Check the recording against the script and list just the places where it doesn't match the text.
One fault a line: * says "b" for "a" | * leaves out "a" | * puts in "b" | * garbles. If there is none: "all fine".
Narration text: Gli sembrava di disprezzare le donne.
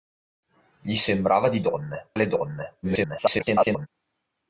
* says "donne" for "disprezzare"
* garbles